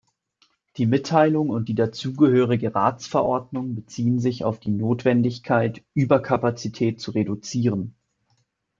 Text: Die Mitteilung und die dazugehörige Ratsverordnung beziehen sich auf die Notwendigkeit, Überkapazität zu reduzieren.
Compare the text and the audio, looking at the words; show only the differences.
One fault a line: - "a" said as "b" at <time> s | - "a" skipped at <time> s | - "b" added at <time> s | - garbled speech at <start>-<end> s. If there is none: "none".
none